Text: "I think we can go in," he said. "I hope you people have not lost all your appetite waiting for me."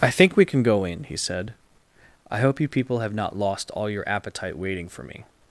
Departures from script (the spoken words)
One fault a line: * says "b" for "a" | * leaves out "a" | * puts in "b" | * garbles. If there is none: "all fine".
all fine